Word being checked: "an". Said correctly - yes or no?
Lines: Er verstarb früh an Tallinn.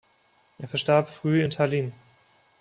no